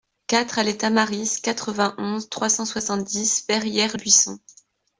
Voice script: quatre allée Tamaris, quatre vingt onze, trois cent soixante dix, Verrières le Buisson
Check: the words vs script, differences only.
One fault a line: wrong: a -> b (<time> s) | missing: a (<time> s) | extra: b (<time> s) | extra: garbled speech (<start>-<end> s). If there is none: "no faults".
missing: le (4.0 s)